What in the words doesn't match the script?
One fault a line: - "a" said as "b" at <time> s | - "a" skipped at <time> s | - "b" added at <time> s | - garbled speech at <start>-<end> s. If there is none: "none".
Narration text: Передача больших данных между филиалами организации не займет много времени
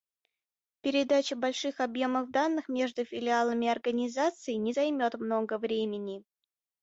- "объемов" added at 1.8 s